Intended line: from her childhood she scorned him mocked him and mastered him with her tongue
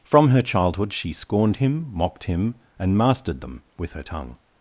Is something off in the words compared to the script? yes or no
yes